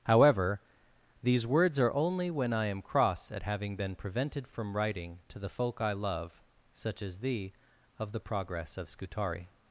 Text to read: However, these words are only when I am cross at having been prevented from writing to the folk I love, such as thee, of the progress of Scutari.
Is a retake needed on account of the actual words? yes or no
no